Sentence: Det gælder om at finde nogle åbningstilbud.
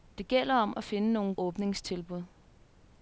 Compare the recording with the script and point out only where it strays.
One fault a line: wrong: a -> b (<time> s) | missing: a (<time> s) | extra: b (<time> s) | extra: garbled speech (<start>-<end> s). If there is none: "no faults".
no faults